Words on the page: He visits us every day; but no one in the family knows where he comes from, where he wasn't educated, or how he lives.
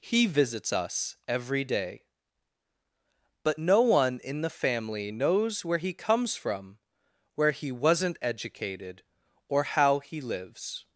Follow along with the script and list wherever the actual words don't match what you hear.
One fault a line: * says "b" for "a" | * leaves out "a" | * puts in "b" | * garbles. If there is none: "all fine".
all fine